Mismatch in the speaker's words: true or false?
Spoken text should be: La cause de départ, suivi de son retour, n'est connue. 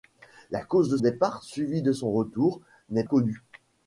false